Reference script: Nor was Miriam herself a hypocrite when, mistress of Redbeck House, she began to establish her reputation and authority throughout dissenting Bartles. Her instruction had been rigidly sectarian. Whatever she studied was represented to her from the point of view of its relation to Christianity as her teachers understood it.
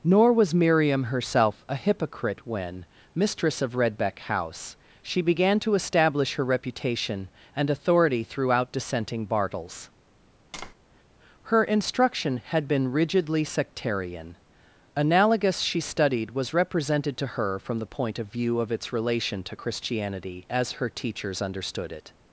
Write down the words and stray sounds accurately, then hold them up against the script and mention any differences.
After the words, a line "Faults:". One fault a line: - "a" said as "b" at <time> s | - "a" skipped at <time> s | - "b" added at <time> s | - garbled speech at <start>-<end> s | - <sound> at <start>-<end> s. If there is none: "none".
Nor was Miriam herself a hypocrite when, mistress of Redbeck House, she began to establish her reputation and authority throughout dissenting Bartles. Her instruction had been rigidly sectarian. Analogous she studied was represented to her from the point of view of its relation to Christianity as her teachers understood it.
Faults:
- tap at 10.5-10.7 s
- "Whatever" said as "Analogous" at 14.9 s